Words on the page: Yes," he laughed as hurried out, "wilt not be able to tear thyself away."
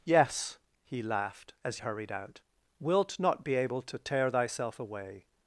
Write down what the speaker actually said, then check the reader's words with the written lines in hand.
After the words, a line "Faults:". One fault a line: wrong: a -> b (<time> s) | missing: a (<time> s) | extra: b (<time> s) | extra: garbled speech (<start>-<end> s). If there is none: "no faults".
Yes," he laughed as hurried out, "wilt not be able to tear thyself away."
Faults:
no faults